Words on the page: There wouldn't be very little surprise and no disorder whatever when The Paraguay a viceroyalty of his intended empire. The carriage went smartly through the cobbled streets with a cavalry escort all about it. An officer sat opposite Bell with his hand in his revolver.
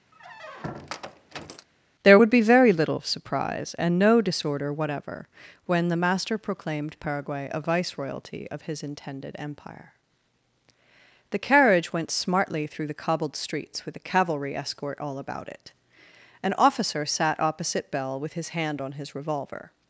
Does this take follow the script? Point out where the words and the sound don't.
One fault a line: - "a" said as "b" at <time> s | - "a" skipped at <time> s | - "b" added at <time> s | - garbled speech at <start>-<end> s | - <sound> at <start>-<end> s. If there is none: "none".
- squeak at 0.1-1.7 s
- "wouldn't" said as "would" at 2.2 s
- "Master proclaimed" added at 6.0 s
- "in" said as "on" at 18.8 s